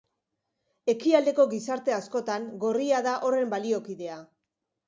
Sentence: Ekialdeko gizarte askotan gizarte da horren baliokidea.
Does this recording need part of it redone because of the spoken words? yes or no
yes